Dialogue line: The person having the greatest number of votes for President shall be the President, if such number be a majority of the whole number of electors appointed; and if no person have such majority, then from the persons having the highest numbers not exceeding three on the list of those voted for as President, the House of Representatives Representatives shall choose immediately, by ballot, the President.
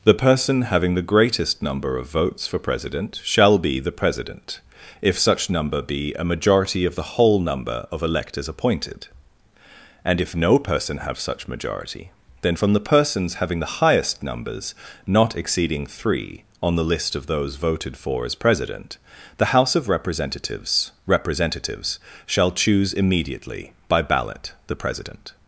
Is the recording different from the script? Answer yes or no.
no